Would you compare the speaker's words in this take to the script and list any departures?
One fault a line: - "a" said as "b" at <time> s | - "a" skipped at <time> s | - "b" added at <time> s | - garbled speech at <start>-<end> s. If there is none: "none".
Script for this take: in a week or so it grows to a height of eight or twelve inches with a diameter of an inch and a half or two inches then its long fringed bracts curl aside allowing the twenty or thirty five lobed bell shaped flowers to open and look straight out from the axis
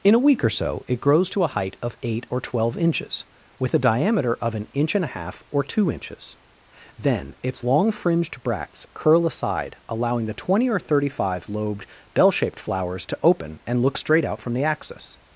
none